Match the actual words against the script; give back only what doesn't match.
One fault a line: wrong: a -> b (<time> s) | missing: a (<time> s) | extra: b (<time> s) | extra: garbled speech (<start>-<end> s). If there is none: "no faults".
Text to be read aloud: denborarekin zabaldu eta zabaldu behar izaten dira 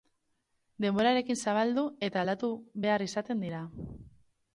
wrong: zabaldu -> aldatu (2.2 s)